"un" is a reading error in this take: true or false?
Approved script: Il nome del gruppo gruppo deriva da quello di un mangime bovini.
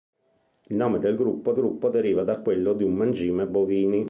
false